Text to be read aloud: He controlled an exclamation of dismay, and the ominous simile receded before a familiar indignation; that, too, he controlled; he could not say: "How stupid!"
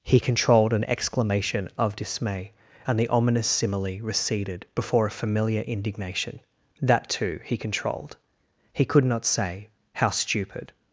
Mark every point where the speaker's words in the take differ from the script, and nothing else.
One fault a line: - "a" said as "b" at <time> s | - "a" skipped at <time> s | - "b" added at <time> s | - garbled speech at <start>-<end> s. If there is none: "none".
none